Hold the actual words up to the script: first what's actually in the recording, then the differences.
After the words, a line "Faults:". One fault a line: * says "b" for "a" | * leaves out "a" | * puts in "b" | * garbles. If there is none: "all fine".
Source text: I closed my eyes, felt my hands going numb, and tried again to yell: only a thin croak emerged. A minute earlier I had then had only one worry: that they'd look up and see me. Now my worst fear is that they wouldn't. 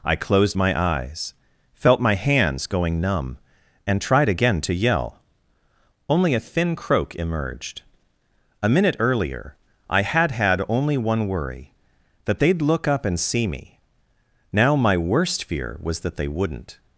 I closed my eyes, felt my hands going numb, and tried again to yell: only a thin croak emerged. A minute earlier I had had only one worry: that they'd look up and see me. Now my worst fear was that they wouldn't.
Faults:
* leaves out "then"
* says "was" for "is"